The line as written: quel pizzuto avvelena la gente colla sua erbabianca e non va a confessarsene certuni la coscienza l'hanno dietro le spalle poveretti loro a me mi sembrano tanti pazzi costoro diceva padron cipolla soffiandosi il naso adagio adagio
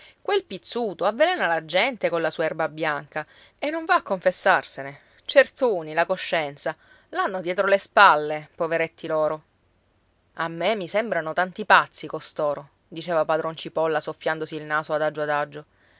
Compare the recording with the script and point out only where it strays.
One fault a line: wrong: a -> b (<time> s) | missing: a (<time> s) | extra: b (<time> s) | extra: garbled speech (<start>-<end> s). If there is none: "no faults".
no faults